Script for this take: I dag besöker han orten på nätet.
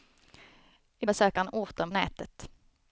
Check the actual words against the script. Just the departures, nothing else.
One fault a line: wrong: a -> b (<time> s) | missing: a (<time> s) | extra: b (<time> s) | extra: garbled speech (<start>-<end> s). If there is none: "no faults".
missing: dag (1.1 s)
missing: på (1.9 s)